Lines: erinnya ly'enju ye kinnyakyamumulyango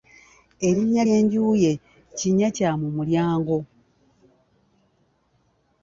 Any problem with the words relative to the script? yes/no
no